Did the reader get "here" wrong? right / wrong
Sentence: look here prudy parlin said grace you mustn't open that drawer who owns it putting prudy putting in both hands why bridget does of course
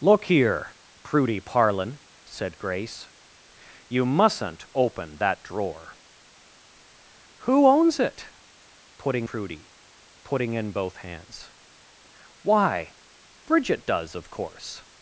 right